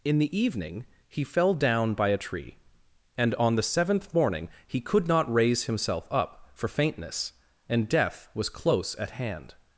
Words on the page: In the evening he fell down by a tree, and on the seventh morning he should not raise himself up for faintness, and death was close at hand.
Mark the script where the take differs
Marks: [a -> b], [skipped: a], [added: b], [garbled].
In the evening he fell down by a tree, and on the seventh morning he [should -> could] not raise himself up for faintness, and death was close at hand.